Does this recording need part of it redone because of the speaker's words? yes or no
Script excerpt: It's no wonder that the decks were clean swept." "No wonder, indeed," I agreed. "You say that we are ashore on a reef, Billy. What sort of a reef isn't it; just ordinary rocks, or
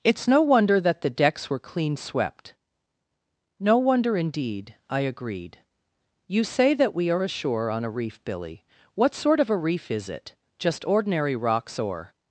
yes